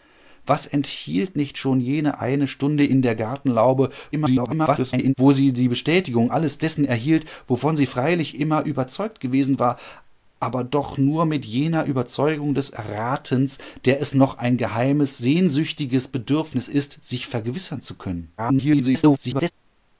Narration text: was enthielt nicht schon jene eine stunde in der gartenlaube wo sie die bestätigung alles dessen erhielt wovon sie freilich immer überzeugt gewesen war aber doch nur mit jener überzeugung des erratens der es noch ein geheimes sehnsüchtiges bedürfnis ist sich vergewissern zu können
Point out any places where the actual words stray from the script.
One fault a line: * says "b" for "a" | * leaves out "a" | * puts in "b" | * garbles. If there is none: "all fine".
* garbles
* garbles